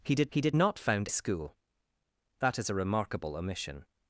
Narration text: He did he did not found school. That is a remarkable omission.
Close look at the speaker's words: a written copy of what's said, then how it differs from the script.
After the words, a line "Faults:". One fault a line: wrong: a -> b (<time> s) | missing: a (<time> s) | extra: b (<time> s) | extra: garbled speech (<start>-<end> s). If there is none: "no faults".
He did he did not found school. That is a remarkable omission.
Faults:
no faults